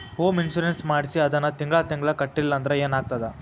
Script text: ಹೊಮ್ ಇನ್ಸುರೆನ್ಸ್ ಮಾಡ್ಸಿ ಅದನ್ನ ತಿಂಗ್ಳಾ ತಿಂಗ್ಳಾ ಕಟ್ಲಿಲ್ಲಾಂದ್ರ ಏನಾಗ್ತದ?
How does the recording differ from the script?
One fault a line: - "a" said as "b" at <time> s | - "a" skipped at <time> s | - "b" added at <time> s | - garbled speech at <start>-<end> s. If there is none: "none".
none